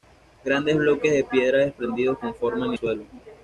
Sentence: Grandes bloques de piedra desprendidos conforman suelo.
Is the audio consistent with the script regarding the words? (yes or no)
yes